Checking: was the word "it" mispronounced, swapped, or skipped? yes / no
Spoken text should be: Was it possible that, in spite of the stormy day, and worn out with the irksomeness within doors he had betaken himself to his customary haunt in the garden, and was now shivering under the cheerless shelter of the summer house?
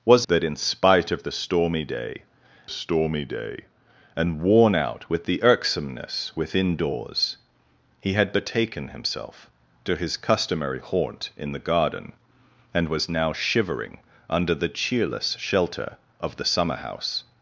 yes